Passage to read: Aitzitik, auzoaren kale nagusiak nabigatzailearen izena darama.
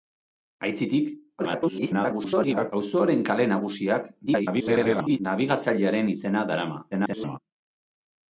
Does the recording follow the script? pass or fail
fail